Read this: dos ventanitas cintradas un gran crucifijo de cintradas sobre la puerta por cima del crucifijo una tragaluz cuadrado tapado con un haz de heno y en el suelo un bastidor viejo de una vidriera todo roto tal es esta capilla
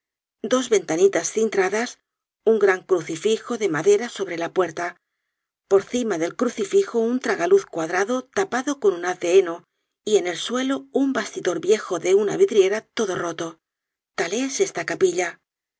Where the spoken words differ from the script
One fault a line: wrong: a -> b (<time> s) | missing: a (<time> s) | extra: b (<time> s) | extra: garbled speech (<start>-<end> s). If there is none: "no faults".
wrong: cintradas -> madera (3.7 s)
wrong: una -> un (7.0 s)